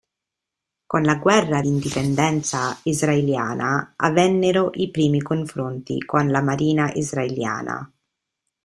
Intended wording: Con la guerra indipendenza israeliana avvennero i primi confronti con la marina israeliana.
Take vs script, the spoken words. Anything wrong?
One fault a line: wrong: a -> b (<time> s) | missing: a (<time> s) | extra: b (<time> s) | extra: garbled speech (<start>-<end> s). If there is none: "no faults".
no faults